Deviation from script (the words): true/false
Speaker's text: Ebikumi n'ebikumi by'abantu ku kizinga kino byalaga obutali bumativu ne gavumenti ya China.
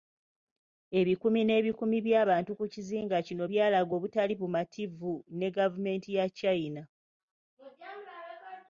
false